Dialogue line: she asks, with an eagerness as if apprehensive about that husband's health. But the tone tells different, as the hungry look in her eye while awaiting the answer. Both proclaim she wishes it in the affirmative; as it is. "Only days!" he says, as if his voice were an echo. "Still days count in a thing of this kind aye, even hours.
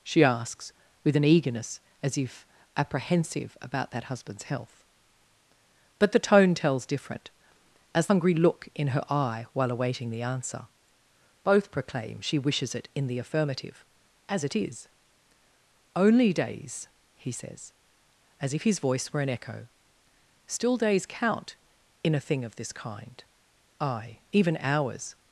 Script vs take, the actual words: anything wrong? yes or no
yes